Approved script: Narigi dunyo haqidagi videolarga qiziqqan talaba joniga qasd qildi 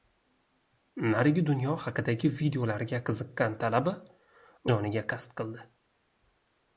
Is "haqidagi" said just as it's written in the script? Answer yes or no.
yes